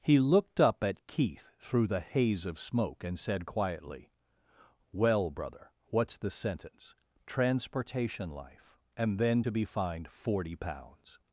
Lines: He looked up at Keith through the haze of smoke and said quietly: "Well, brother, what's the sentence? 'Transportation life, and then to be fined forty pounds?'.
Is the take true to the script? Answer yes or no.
yes